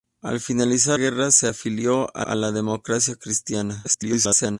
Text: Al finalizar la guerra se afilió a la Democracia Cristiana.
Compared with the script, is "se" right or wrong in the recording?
right